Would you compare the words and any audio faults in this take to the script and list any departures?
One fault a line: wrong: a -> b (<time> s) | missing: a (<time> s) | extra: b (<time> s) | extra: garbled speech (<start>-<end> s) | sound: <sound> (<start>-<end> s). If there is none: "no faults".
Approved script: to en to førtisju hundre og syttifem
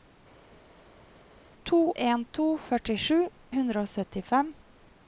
no faults